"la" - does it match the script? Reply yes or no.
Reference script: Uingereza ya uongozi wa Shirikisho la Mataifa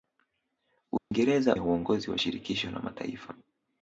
yes